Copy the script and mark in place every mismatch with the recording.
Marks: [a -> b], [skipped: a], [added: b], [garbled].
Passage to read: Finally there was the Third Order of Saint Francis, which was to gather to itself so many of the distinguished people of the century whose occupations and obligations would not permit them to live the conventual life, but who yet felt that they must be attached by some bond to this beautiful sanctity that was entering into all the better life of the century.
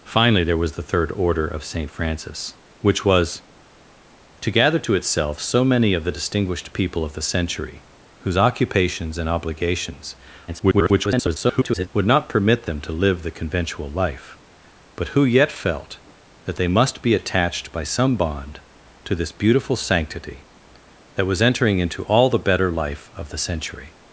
Finally there was the Third Order of Saint Francis, which was to gather to itself so many of the distinguished people of the century whose occupations and obligations [garbled] would not permit them to live the conventual life, but who yet felt that they must be attached by some bond to this beautiful sanctity that was entering into all the better life of the century.